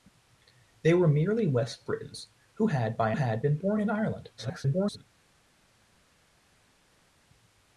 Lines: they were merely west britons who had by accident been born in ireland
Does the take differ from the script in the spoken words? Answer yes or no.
yes